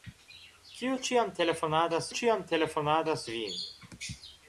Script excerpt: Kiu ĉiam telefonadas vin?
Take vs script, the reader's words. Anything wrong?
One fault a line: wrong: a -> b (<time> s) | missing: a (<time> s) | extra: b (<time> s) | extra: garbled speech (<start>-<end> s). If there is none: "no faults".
extra: ĉiam telefonadas (2.2 s)